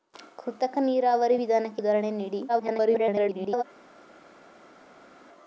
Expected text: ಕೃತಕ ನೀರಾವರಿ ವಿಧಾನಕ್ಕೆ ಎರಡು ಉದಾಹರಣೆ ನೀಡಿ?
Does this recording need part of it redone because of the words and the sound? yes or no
yes